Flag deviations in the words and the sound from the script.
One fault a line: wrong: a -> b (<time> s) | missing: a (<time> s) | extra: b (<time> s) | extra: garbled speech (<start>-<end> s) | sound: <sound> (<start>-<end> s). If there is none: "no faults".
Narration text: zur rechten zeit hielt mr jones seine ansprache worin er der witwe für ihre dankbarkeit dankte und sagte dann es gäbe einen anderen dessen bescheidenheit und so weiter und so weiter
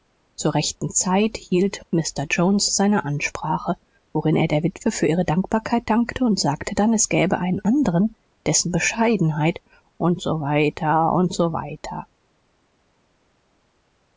no faults